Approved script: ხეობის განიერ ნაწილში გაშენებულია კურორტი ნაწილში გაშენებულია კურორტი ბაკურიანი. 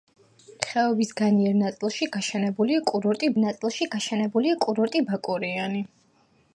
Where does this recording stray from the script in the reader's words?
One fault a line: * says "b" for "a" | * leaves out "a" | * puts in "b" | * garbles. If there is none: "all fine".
all fine